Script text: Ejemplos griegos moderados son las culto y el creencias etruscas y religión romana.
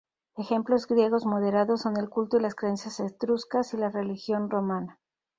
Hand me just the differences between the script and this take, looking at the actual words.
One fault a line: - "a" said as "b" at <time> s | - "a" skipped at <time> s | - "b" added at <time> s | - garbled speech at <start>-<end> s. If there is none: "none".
- "las" said as "el" at 2.0 s
- "el" said as "las" at 2.4 s
- "la" added at 3.8 s